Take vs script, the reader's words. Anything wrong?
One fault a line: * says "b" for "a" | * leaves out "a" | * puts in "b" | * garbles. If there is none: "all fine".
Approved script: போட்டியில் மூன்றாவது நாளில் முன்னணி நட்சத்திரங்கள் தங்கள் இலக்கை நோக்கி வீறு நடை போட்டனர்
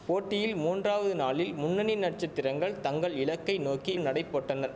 * leaves out "வீறு"